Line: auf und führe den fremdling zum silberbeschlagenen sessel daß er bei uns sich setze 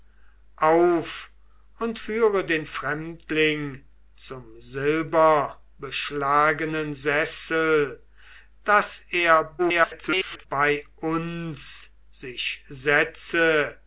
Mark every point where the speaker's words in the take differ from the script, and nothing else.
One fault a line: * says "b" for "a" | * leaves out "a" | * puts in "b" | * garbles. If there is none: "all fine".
* garbles